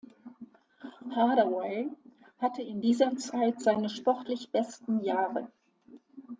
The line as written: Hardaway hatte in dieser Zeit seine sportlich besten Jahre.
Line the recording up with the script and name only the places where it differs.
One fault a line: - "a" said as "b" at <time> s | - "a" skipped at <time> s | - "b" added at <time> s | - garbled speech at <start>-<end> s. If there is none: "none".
none